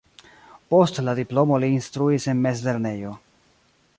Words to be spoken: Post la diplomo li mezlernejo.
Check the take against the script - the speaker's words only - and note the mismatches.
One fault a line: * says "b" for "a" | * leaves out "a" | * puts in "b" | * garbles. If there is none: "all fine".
* puts in "instruis en"